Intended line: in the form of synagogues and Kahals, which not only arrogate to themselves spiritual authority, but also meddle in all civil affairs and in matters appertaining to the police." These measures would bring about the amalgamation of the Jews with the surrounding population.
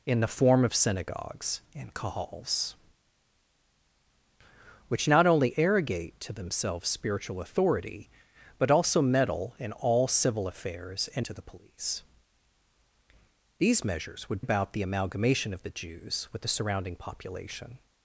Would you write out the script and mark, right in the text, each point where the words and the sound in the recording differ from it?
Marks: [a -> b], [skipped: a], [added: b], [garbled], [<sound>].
in the form of synagogues and Kahals, which not only arrogate to themselves spiritual authority, but also meddle in all civil affairs and [skipped: in matters appertaining] to the police." These measures would [skipped: bring] about the amalgamation of the Jews with the surrounding population.